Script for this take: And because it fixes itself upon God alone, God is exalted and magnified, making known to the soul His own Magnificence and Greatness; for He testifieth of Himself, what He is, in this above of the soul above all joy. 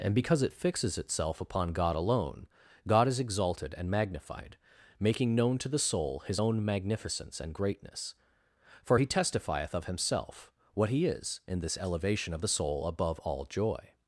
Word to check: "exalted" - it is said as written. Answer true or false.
true